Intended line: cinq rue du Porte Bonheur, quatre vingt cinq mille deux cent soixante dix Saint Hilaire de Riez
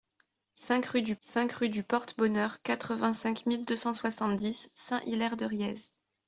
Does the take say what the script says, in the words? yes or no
no